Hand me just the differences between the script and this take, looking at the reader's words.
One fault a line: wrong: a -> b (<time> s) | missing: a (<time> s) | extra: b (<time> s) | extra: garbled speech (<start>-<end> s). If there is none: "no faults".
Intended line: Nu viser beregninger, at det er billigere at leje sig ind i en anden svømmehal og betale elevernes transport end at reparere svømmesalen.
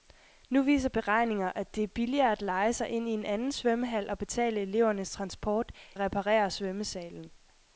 missing: end (5.7 s)